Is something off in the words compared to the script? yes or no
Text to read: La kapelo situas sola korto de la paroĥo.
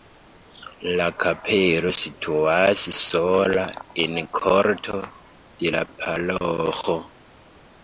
yes